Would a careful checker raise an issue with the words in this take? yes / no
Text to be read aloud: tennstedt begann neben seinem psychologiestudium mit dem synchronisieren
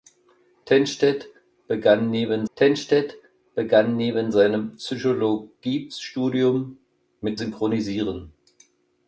yes